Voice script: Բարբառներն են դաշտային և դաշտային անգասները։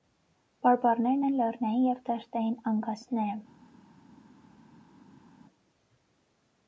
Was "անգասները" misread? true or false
false